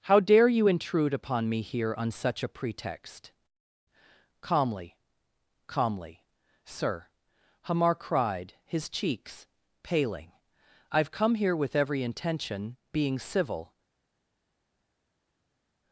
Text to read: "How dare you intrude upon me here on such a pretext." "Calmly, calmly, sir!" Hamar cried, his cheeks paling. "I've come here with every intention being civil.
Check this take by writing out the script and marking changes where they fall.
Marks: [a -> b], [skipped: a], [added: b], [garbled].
"How dare you intrude upon me here on such a pretext." "Calmly, calmly, sir!" Hamar cried, his cheeks paling. "I've come here with every intention being civil.